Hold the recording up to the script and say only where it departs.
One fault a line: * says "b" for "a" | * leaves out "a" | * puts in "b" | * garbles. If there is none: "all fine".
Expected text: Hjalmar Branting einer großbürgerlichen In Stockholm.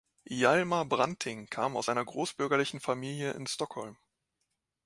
* puts in "kam aus"
* puts in "Familie"